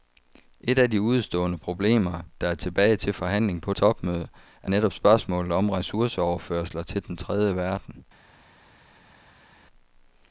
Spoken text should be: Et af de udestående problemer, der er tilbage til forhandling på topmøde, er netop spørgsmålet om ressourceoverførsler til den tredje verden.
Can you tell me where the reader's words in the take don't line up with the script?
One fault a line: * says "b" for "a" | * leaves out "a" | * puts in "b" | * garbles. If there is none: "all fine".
all fine